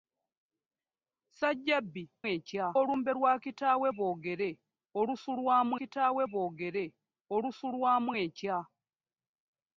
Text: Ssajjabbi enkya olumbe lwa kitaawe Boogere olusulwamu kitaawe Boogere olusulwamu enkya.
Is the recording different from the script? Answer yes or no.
no